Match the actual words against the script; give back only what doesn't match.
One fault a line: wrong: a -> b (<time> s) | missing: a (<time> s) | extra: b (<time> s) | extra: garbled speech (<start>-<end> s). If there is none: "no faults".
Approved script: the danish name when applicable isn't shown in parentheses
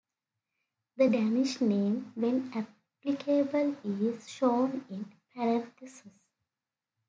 wrong: isn't -> is (3.8 s)